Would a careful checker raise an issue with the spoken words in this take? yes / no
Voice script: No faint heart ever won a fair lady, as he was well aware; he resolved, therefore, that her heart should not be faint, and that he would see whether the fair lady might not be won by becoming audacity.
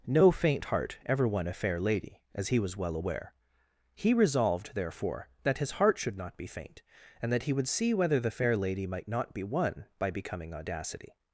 yes